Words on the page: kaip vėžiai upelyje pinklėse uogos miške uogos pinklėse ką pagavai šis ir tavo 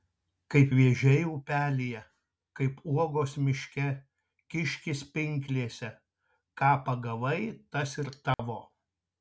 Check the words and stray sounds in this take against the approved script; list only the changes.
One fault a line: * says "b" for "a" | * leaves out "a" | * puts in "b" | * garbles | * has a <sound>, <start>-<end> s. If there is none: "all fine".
* says "kaip" for "pinklėse"
* says "kiškis" for "uogos"
* says "tas" for "šis"
* has a dropout, 8.3-8.4 s